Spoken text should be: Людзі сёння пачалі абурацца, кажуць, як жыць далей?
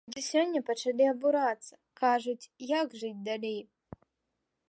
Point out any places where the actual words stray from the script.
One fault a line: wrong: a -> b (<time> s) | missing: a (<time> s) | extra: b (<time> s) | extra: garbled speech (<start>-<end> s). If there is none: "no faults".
no faults